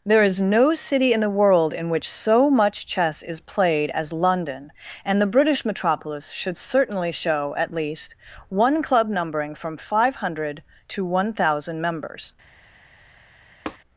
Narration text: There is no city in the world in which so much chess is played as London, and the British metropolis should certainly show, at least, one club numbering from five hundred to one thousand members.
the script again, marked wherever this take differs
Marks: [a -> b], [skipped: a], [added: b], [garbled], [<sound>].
There is no city in the world in which so much chess is played as London, and the British metropolis should certainly show, at least, one club numbering from five hundred to one thousand members. [tap]